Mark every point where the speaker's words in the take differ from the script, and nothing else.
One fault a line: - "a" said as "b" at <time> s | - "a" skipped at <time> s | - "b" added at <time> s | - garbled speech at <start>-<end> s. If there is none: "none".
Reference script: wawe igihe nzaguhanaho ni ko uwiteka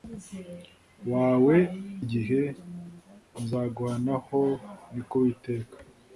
none